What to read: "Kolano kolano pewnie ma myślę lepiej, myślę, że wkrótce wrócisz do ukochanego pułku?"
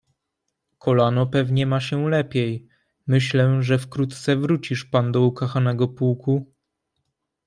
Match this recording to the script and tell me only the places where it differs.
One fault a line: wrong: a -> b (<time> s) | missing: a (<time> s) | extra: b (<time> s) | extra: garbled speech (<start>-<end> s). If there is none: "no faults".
missing: kolano (1.3 s)
wrong: myślę -> się (1.8 s)
extra: pan (4.8 s)